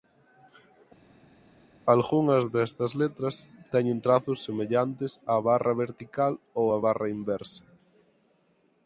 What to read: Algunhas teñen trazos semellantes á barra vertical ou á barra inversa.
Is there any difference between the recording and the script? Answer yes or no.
yes